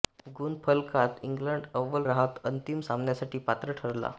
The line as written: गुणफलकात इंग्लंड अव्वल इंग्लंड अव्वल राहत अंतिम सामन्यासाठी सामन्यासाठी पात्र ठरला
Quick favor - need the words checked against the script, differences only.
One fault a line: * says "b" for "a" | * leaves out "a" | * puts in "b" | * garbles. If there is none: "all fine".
* leaves out "इंग्लंड अव्वल"
* leaves out "सामन्यासाठी"